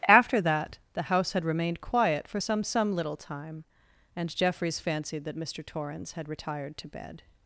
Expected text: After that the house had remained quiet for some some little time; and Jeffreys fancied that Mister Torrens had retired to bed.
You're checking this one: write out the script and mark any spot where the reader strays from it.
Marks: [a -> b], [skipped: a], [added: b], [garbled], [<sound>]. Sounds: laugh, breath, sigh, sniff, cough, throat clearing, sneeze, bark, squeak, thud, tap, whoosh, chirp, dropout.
After that the house had remained quiet for some some little time; and Jeffreys fancied that Mister Torrens had retired to bed.